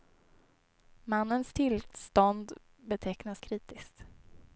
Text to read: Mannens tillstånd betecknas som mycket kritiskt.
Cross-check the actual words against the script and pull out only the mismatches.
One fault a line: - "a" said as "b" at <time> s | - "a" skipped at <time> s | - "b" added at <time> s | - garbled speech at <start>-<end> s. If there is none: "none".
- "som mycket" skipped at 3.4 s